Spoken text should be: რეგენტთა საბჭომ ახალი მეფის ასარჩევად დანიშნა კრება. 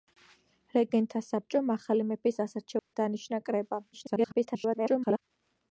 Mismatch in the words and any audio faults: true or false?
true